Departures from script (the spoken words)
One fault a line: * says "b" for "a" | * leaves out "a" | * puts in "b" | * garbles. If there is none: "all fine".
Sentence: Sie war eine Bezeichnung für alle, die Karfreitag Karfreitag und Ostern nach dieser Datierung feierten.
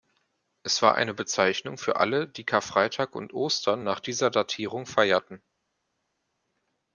* says "Es" for "Sie"
* leaves out "Karfreitag"